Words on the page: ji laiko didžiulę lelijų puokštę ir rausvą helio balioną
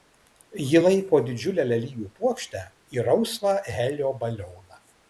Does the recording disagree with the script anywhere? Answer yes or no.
no